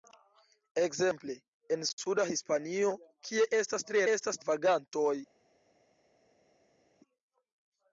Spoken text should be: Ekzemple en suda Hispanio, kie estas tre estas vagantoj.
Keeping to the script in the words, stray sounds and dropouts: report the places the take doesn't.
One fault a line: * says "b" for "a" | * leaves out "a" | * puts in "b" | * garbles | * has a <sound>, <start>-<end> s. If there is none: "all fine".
all fine